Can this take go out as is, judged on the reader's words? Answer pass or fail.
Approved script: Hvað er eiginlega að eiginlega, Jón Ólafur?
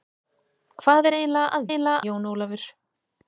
pass